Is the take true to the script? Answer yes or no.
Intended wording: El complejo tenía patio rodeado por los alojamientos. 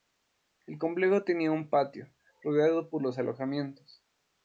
no